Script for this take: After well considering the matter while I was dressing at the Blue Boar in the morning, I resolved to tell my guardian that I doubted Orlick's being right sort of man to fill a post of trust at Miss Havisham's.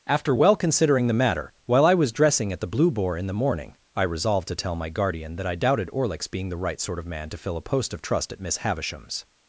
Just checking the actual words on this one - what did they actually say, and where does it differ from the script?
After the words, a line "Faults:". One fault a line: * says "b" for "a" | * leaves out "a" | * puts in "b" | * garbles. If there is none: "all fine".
After well considering the matter while I was dressing at the Blue Boar in the morning, I resolved to tell my guardian that I doubted Orlick's being the right sort of man to fill a post of trust at Miss Havisham's.
Faults:
* puts in "the"